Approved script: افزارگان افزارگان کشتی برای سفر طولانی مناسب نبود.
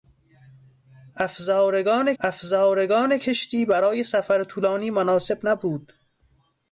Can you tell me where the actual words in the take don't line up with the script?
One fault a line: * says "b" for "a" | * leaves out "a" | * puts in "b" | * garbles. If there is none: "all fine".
all fine